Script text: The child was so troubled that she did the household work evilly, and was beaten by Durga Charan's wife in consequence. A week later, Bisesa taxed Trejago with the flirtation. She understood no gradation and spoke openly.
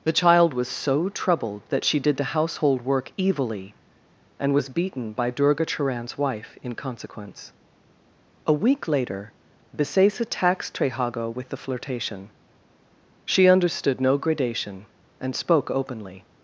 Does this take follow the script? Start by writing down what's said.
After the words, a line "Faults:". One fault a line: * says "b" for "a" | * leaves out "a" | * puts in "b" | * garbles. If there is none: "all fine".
The child was so troubled that she did the household work evilly, and was beaten by Durga Charan's wife in consequence. A week later, Bisesa taxed Trejago with the flirtation. She understood no gradation and spoke openly.
Faults:
all fine